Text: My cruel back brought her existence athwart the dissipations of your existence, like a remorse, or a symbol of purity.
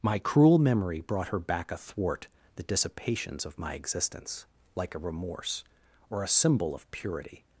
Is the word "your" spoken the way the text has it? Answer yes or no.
no